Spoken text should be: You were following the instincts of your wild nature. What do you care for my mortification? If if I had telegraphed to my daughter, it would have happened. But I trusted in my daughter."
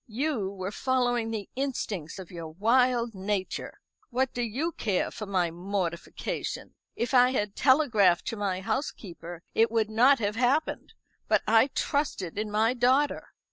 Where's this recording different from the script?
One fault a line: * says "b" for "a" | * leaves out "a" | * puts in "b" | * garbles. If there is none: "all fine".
* leaves out "if"
* says "housekeeper" for "daughter"
* puts in "not"